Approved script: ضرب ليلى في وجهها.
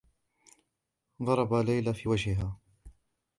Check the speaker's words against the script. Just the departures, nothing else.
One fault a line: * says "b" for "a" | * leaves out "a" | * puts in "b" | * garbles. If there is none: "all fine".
all fine